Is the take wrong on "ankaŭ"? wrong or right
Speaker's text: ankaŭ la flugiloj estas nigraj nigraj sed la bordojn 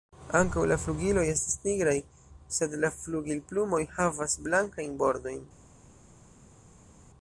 right